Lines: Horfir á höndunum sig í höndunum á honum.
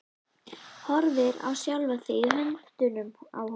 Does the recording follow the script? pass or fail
fail